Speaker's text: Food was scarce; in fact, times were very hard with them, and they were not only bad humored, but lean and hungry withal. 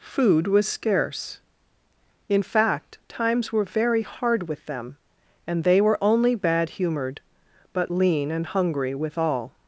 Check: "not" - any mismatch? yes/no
yes